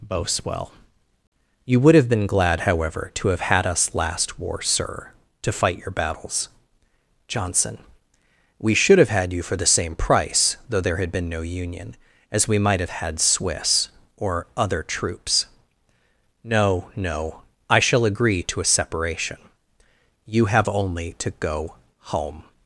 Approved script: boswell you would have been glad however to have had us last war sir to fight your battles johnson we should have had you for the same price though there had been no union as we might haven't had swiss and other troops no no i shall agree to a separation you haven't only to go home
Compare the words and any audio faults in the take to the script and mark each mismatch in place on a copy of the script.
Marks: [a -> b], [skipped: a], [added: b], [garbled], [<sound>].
boswell you would have been glad however to have had us last war sir to fight your battles johnson we should have had you for the same price though there had been no union as we might [haven't -> have] had swiss [and -> or] other troops no no i shall agree to a separation you [haven't -> have] only to go home